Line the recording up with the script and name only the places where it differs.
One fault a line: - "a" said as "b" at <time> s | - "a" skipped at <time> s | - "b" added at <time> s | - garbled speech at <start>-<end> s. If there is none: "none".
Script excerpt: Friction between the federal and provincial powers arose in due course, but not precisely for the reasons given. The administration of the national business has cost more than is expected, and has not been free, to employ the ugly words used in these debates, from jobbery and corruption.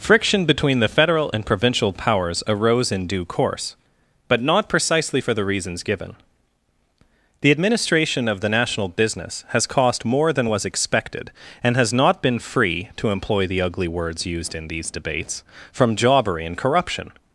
- "is" said as "was" at 10.5 s